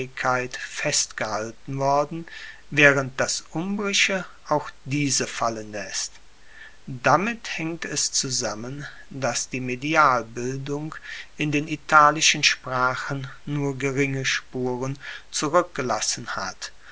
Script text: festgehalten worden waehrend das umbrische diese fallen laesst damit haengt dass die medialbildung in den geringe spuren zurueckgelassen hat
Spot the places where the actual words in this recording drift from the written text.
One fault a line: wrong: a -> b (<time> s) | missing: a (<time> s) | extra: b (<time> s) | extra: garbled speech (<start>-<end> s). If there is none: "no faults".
extra: auch (4.5 s)
extra: es zusammen (7.8 s)
extra: italischen sprachen nur (11.7 s)